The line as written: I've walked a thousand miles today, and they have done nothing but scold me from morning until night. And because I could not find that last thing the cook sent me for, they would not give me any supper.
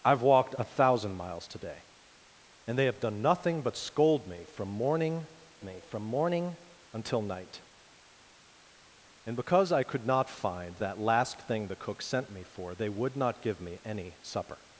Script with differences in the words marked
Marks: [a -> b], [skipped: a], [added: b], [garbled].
I've walked a thousand miles today, and they have done nothing but scold me from morning [added: me from morning] until night. And because I could not find that last thing the cook sent me for, they would not give me any supper.